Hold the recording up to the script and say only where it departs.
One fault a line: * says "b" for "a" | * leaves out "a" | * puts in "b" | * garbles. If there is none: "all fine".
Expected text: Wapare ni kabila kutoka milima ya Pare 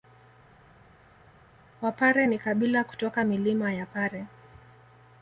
all fine